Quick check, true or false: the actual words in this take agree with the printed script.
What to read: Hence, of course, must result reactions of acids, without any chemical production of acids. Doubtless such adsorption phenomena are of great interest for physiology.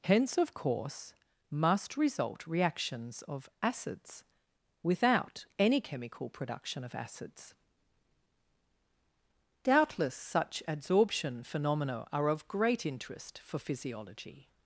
true